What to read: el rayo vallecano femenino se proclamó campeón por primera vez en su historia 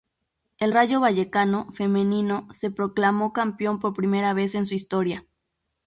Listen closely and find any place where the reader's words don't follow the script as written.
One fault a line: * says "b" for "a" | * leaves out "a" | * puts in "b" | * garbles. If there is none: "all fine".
all fine